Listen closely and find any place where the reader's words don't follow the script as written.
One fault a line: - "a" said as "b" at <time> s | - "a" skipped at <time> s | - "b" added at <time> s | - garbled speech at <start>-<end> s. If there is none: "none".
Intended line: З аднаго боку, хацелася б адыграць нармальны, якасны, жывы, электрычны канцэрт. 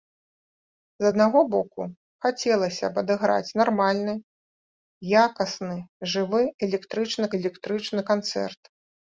- "электрычны" added at 7.4 s